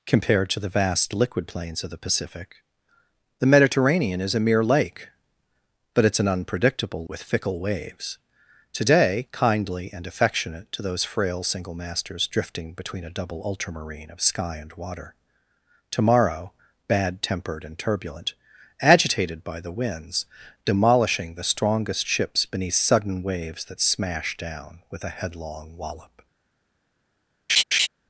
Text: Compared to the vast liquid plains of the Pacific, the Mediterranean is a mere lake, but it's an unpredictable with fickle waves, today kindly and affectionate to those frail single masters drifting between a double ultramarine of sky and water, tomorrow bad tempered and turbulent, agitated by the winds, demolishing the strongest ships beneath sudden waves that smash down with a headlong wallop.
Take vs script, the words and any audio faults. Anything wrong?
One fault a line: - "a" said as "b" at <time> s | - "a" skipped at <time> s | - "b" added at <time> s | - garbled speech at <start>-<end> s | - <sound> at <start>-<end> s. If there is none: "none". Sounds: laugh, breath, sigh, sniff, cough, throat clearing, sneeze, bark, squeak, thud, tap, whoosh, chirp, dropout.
- laugh at 27.5-27.9 s